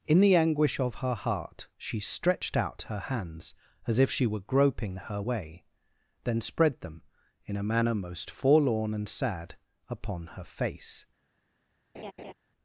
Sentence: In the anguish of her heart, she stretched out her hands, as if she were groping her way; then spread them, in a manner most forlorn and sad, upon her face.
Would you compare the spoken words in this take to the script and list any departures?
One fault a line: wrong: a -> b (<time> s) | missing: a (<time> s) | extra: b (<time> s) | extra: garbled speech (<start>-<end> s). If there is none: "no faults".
no faults